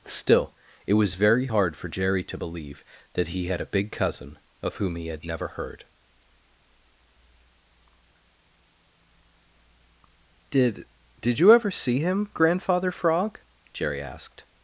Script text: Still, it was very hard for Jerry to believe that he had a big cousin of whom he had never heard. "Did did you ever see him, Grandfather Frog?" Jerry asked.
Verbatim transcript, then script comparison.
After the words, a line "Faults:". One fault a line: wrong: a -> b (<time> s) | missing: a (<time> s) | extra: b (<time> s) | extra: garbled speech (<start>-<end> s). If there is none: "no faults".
Still, it was very hard for Jerry to believe that he had a big cousin of whom he had never heard. "Did did you ever see him, Grandfather Frog?" Jerry asked.
Faults:
no faults